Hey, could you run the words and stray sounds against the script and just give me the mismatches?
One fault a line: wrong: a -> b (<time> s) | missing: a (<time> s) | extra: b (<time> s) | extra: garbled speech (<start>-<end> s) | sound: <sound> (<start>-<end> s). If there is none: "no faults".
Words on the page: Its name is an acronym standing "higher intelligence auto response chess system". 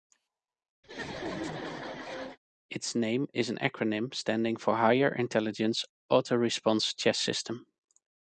sound: laugh (0.8-2.4 s)
extra: for (4.6 s)